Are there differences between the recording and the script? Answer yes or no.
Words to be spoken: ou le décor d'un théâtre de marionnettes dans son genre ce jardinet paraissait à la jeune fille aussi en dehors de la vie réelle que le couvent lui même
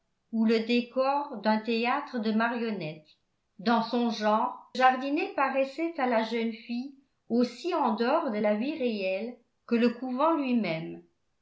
yes